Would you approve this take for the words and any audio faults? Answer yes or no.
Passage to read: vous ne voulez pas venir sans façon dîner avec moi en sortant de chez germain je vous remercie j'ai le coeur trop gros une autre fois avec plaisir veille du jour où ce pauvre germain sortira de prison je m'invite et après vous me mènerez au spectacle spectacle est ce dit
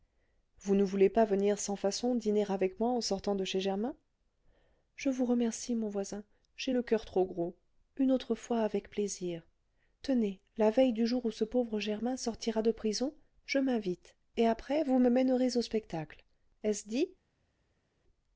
no